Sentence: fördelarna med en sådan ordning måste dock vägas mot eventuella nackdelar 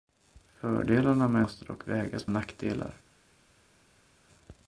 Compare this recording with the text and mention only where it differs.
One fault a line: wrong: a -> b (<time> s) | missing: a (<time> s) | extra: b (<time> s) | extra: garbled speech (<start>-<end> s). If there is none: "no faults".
missing: en sådan ordning (1.4 s)
missing: mot eventuella (2.3 s)